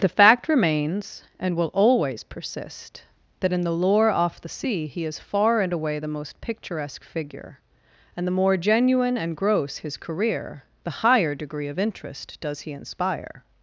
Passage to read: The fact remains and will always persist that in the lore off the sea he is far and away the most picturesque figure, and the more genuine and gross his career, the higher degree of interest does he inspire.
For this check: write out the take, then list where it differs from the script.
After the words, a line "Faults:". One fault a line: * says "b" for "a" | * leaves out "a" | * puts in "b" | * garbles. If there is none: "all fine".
The fact remains and will always persist that in the lore off the sea he is far and away the most picturesque figure, and the more genuine and gross his career, the higher degree of interest does he inspire.
Faults:
all fine